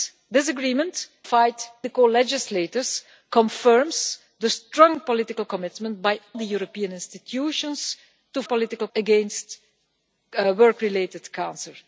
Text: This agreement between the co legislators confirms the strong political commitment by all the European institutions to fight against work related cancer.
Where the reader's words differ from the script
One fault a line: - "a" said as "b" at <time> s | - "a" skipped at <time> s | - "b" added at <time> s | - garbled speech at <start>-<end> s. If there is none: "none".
- "between" said as "fight" at 1.2 s
- "all" skipped at 6.2 s
- "fight" said as "political" at 8.4 s